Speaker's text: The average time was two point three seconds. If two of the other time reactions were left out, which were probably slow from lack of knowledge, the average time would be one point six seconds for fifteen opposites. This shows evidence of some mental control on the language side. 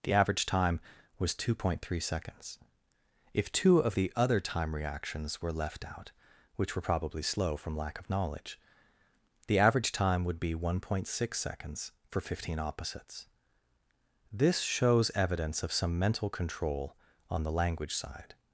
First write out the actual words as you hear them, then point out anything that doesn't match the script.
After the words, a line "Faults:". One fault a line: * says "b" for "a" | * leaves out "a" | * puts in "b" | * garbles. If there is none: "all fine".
The average time was two point three seconds. If two of the other time reactions were left out, which were probably slow from lack of knowledge, the average time would be one point six seconds for fifteen opposites. This shows evidence of some mental control on the language side.
Faults:
all fine